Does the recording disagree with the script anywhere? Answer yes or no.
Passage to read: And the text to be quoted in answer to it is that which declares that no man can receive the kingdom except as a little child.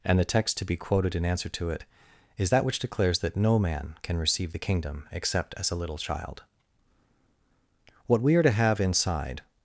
yes